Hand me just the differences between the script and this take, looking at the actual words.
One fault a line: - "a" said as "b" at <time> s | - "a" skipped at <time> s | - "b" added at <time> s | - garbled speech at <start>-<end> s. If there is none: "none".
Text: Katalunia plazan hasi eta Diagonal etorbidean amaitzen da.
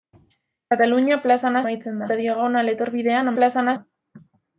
- "hasi" said as "amaitzen" at 1.6 s
- "amaitzen" said as "plazan" at 3.4 s